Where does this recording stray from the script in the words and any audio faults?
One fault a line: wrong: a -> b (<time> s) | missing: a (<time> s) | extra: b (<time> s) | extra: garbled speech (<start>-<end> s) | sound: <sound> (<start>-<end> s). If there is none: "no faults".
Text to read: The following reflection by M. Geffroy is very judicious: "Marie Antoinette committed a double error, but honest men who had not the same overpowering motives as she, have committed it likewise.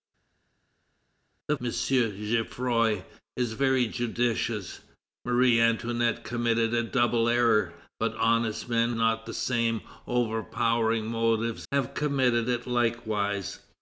missing: following reflection by (1.6 s)
missing: who had (8.9 s)
missing: as she (11.7 s)